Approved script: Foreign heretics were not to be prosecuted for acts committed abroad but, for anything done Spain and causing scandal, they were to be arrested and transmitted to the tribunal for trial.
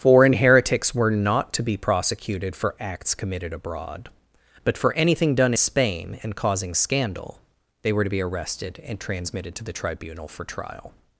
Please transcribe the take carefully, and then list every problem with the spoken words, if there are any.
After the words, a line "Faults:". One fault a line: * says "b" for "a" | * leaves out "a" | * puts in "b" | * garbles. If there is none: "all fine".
Foreign heretics were not to be prosecuted for acts committed abroad but, for anything done Spain and causing scandal, they were to be arrested and transmitted to the tribunal for trial.
Faults:
all fine